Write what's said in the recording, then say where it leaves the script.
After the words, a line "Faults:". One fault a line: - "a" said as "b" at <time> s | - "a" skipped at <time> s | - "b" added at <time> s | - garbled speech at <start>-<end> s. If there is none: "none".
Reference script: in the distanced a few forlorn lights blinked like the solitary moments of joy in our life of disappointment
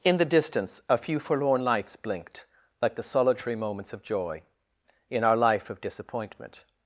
in the distance a few forlorn lights blinked like the solitary moments of joy in our life of disappointment
Faults:
- "distanced" said as "distance" at 0.2 s